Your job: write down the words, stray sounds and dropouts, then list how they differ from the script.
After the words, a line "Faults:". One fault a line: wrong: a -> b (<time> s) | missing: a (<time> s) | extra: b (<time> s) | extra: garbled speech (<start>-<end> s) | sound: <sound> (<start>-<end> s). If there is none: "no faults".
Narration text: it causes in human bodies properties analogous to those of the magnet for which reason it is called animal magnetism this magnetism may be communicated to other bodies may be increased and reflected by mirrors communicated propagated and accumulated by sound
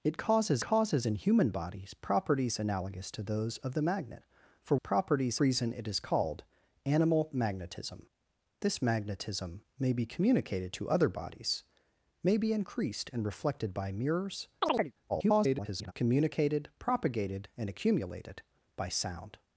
it causes causes in human bodies properties analogous to those of the magnet for properties reason it is called animal magnetism this magnetism may be communicated to other bodies may be increased and reflected by mirrors [garbled] communicated propagated and accumulated by sound
Faults:
extra: causes (0.6 s)
wrong: which -> properties (4.7 s)
sound: chirp (14.6-14.9 s)
extra: garbled speech (15.1-15.9 s)